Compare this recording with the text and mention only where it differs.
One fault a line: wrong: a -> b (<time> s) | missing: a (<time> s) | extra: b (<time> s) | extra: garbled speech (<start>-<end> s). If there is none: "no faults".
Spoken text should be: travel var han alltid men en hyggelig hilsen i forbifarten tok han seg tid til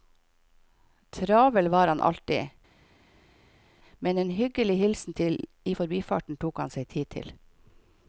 no faults